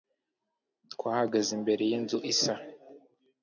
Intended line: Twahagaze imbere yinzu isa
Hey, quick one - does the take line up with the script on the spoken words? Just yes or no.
yes